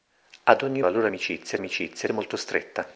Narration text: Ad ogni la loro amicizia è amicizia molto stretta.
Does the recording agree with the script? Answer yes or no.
yes